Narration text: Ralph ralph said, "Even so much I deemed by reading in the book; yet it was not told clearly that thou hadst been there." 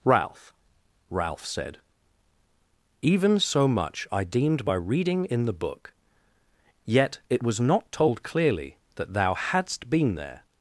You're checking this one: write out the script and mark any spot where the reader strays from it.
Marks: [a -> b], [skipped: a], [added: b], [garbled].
Ralph ralph said, "Even so much I deemed by reading in the book; yet it was not told clearly that thou hadst been there."